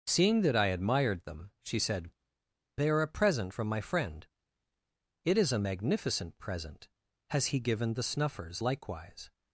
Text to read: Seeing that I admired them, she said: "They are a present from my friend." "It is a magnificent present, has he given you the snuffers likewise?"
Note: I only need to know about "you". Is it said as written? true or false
false